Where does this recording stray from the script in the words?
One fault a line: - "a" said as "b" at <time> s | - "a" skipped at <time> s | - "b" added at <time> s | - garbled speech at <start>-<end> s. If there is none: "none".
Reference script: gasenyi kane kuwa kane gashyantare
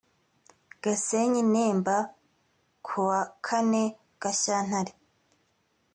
- "kane" said as "nemba" at 1.5 s